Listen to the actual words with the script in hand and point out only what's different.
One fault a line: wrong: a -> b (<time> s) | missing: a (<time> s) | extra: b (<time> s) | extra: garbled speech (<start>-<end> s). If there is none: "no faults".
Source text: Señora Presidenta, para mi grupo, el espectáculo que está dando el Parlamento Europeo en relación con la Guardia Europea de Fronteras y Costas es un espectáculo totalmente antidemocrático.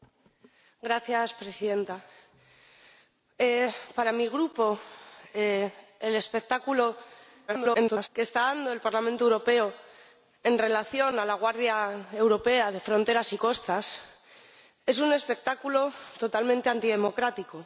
extra: garbled speech (7.5-8.1 s)